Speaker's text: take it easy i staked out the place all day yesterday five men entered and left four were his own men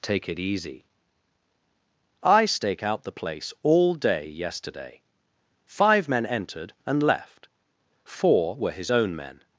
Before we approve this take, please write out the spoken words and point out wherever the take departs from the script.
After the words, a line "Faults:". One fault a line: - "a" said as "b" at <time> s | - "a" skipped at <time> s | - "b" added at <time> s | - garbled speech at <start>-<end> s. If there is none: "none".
take it easy i stake out the place all day yesterday five men entered and left four were his own men
Faults:
- "staked" said as "stake" at 2.5 s